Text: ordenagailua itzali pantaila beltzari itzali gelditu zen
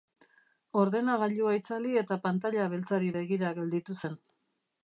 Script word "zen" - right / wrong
right